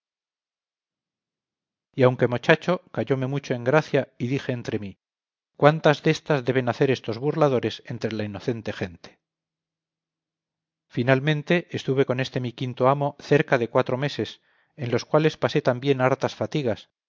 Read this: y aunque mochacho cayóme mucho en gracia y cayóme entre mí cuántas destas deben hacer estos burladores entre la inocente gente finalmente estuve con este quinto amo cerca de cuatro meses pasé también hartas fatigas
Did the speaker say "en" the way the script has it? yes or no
yes